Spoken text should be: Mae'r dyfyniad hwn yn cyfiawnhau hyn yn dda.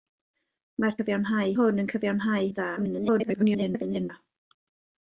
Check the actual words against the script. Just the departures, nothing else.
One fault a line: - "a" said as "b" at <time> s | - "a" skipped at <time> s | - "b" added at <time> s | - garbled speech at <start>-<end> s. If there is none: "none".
- "dyfyniad" said as "cyfiawnhau" at 1.0 s
- "hyn" skipped at 2.5 s
- garbled speech at 2.8-4.1 s